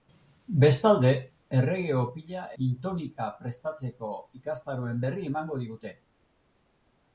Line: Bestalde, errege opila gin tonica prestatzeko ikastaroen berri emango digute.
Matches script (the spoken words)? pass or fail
pass